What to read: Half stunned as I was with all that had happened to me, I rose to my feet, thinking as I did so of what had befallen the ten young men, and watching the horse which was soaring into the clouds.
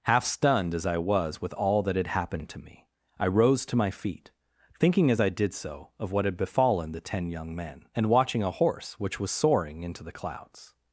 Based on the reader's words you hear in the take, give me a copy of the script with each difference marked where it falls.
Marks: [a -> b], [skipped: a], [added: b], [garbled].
Half stunned as I was with all that had happened to me, I rose to my feet, thinking as I did so of what had befallen the ten young men, and watching [the -> a] horse which was soaring into the clouds.